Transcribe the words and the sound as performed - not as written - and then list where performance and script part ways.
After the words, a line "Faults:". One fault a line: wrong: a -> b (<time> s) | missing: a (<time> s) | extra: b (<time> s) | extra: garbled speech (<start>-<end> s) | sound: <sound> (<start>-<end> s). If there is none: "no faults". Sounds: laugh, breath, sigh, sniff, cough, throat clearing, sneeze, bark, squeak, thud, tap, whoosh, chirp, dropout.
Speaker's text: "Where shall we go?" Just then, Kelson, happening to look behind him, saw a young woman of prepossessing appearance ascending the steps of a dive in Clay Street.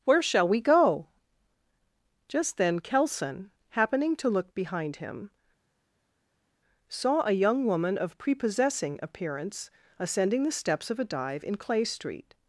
"Where shall we go?" Just then, Kelson, happening to look behind him, saw a young woman of prepossessing appearance ascending the steps of a dive in Clay Street.
Faults:
no faults